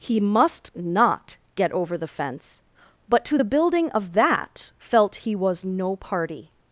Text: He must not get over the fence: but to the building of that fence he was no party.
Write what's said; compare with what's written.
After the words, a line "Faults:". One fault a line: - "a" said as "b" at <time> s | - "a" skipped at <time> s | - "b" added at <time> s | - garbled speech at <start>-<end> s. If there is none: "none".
He must not get over the fence: but to the building of that felt he was no party.
Faults:
- "fence" said as "felt" at 4.8 s